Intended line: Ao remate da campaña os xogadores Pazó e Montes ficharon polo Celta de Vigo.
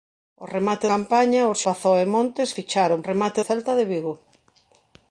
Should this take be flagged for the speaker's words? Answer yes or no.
yes